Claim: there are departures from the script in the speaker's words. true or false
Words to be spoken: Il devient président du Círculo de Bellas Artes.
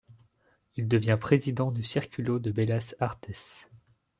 false